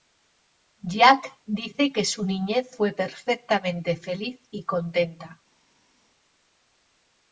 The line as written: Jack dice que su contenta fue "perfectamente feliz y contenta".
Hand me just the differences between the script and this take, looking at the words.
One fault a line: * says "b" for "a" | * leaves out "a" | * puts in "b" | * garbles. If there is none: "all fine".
* says "niñez" for "contenta"